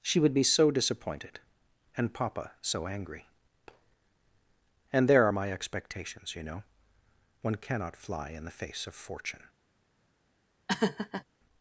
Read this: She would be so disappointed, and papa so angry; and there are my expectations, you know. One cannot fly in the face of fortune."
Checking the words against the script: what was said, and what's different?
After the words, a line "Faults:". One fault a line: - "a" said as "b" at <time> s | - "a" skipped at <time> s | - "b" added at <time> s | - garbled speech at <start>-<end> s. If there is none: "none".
She would be so disappointed, and papa so angry; and there are my expectations, you know. One cannot fly in the face of fortune."
Faults:
none